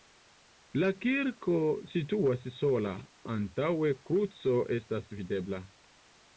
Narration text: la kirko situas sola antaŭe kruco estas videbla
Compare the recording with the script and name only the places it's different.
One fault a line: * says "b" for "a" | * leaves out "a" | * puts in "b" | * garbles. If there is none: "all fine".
all fine